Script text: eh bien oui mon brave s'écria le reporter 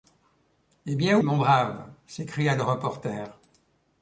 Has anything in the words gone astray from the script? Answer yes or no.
yes